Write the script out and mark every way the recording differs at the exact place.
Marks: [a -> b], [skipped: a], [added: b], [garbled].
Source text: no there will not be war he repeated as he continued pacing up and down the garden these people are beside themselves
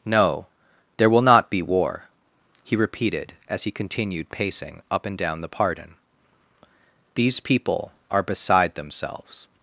no there will not be war he repeated as he continued pacing up and down the [garden -> pardon] these people are beside themselves